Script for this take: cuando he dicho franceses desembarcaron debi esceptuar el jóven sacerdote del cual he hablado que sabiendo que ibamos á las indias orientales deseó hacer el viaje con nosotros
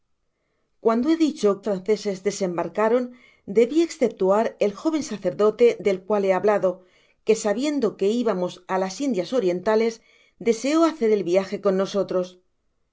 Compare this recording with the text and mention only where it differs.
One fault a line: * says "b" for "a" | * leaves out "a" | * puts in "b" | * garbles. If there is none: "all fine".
all fine